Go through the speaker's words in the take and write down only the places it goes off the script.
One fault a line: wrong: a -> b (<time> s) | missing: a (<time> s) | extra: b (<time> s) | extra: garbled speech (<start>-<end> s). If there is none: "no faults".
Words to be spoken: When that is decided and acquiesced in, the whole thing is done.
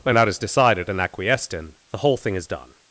no faults